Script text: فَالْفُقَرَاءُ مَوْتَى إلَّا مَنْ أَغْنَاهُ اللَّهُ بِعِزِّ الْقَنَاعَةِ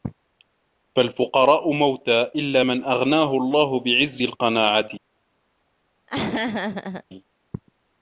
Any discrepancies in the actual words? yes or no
no